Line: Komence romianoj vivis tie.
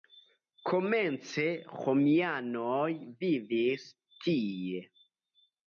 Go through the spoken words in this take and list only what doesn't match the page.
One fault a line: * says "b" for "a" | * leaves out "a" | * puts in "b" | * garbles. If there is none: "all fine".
all fine